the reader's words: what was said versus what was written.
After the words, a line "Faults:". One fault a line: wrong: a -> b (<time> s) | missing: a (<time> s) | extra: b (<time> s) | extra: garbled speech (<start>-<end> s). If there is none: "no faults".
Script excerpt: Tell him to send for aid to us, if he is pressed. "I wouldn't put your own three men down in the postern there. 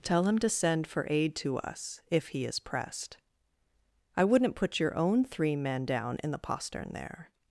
Tell him to send for aid to us, if he is pressed. "I wouldn't put your own three men down in the postern there.
Faults:
no faults